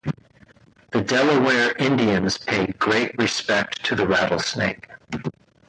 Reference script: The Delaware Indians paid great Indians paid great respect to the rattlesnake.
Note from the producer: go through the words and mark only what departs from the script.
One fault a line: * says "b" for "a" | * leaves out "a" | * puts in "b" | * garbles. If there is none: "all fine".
* leaves out "Indians paid great"